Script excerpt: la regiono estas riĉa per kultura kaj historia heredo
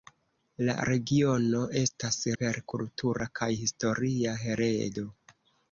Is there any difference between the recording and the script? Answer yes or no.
yes